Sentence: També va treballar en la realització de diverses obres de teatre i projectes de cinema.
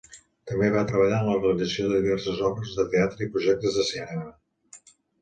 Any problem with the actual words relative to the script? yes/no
no